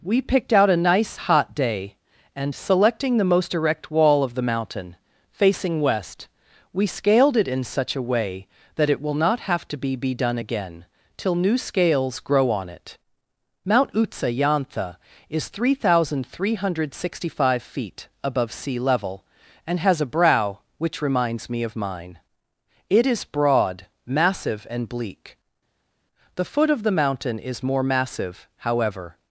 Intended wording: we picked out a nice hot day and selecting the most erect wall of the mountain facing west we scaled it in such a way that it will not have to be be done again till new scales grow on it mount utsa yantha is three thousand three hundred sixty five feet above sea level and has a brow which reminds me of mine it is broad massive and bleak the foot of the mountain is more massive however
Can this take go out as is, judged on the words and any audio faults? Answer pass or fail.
pass